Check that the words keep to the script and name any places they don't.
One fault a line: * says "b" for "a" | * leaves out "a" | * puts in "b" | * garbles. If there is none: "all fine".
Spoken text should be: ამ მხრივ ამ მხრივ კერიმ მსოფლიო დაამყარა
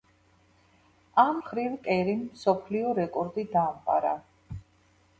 * leaves out "ამ მხრივ"
* puts in "რეკორდი"